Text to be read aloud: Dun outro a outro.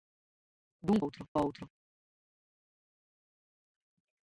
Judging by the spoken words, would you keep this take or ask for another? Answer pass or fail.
pass